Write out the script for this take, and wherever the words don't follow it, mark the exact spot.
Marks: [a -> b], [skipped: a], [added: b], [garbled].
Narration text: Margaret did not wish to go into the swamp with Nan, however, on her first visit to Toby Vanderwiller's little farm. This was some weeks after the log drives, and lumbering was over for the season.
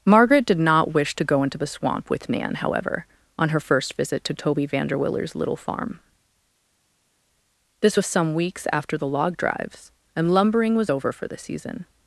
Margaret did not wish to go into the swamp with Nan, however, on her first visit to Toby Vanderwiller's little farm. This was some weeks after the log drives, and lumbering was over for the season.